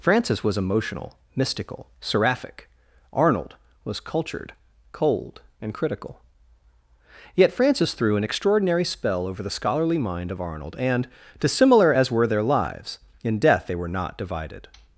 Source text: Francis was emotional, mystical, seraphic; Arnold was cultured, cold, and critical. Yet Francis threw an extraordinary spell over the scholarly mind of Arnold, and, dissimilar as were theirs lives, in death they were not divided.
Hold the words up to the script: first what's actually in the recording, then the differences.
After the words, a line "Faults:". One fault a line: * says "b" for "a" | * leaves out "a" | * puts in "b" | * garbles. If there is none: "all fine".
Francis was emotional, mystical, seraphic; Arnold was cultured, cold, and critical. Yet Francis threw an extraordinary spell over the scholarly mind of Arnold, and, dissimilar as were their lives, in death they were not divided.
Faults:
* says "their" for "theirs"